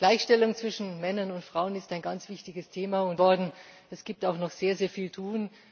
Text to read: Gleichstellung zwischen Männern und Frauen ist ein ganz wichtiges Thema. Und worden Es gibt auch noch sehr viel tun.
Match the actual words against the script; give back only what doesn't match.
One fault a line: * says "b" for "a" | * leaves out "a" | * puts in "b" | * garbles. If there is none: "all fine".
all fine